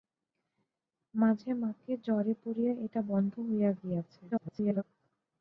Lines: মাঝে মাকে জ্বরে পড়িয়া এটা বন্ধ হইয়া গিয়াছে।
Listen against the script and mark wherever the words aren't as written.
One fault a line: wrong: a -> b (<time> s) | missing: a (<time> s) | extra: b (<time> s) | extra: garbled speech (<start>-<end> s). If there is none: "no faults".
extra: garbled speech (4.3-4.8 s)